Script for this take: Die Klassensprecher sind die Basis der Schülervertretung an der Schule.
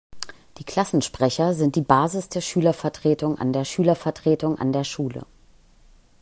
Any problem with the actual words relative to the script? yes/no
yes